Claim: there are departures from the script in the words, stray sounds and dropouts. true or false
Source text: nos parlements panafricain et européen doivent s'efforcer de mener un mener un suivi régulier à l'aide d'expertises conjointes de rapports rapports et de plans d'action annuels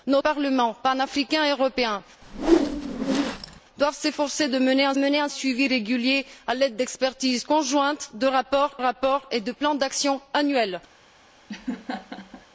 true